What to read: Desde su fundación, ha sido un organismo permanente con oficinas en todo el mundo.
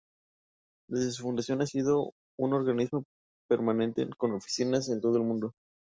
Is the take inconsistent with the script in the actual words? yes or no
no